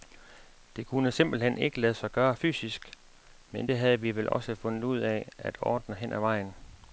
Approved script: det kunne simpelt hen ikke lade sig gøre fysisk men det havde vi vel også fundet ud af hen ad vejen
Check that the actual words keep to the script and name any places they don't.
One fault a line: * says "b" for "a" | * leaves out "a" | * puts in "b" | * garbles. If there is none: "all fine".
* puts in "at ordne"